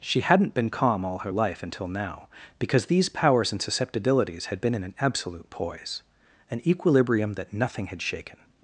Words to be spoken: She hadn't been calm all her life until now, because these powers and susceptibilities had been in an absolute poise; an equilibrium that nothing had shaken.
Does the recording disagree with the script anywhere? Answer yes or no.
no